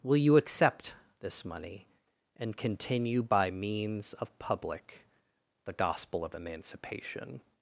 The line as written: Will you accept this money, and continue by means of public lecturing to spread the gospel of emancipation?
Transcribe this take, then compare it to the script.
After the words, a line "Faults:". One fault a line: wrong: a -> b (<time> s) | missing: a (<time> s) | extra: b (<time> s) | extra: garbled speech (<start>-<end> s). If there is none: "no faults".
Will you accept this money, and continue by means of public the gospel of emancipation?
Faults:
missing: lecturing to spread (5.0 s)